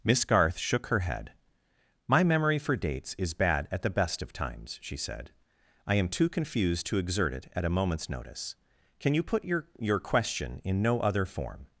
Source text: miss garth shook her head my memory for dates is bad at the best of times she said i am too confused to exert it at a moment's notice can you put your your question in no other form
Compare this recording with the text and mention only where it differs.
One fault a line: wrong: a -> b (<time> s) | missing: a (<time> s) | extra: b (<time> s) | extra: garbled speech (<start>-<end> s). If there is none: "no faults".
no faults